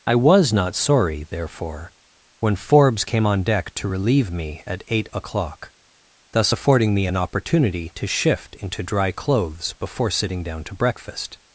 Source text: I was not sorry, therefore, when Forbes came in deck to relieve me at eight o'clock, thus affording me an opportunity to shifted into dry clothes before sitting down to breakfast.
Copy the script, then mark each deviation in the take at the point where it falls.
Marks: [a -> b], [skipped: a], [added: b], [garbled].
I was not sorry, therefore, when Forbes came [in -> on] deck to relieve me at eight o'clock, thus affording me an opportunity to [shifted -> shift] into dry clothes before sitting down to breakfast.